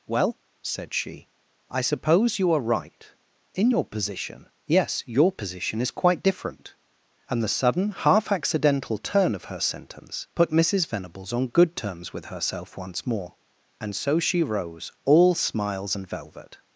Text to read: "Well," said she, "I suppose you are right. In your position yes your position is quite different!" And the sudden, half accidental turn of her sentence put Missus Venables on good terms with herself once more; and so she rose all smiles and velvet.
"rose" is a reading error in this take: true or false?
false